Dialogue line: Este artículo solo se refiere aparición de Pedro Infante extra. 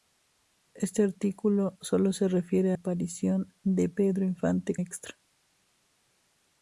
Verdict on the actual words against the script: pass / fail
pass